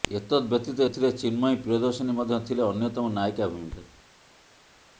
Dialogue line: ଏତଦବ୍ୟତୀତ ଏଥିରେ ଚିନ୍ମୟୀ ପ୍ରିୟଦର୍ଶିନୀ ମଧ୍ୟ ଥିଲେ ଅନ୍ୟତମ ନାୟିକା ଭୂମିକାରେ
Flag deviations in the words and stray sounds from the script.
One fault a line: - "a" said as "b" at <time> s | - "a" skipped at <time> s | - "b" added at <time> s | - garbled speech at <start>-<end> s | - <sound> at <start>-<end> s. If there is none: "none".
none